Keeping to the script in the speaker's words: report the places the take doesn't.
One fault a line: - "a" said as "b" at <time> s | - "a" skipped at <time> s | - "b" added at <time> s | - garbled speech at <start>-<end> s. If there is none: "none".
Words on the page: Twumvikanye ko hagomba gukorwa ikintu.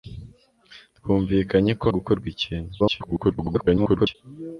- "hagomba" skipped at 1.9 s
- garbled speech at 2.8-4.2 s